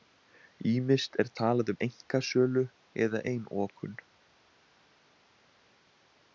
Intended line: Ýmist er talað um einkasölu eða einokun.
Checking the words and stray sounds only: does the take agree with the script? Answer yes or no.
yes